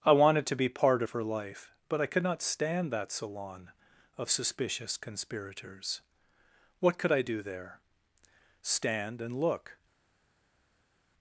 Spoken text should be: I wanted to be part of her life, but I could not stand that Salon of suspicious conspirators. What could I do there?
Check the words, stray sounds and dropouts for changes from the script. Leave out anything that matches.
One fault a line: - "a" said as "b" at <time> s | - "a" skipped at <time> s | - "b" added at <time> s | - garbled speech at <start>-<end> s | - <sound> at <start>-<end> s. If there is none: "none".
- "Stand and look" added at 8.6 s